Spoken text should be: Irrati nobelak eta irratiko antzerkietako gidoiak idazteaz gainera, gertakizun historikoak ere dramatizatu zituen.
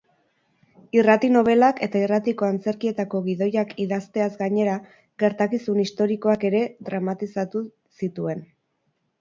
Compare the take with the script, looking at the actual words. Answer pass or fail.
pass